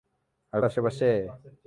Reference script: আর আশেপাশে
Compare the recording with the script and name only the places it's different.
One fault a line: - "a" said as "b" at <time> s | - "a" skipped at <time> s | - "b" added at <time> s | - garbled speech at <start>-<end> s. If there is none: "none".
none